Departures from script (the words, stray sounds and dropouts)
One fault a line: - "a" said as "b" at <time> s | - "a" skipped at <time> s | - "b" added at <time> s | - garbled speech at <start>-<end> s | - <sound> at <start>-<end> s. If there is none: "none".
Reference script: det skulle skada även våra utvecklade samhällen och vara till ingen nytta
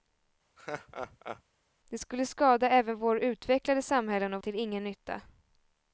- laugh at 0.6-1.4 s
- "vara" skipped at 4.4 s